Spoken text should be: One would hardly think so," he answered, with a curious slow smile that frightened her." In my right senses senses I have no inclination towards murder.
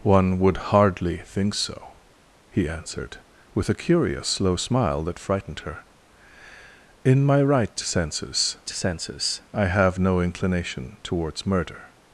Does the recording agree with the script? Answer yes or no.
yes